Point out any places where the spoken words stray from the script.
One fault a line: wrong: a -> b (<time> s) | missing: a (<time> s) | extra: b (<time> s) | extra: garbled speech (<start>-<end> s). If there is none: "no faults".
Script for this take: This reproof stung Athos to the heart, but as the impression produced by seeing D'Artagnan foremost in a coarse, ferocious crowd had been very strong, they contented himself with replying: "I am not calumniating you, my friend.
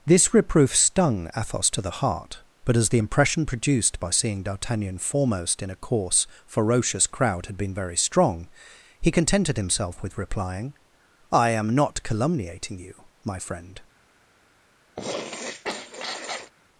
wrong: they -> he (9.0 s)